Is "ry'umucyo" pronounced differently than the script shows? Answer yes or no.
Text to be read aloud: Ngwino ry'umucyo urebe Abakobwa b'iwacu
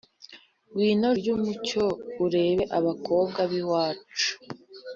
no